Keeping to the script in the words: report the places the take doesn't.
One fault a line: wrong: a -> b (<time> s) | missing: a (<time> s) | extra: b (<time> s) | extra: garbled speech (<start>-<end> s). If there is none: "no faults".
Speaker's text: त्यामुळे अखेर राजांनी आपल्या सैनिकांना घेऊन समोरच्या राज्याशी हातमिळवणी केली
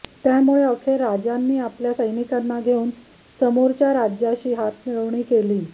no faults